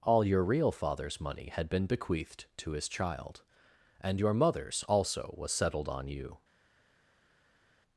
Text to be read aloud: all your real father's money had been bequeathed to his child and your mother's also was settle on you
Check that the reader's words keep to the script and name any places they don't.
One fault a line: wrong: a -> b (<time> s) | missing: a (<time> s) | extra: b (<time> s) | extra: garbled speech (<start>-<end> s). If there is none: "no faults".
wrong: settle -> settled (5.5 s)